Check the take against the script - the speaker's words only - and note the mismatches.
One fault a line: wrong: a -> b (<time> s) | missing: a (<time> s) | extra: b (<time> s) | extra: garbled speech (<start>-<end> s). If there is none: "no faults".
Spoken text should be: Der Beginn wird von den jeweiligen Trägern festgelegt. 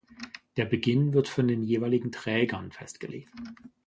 no faults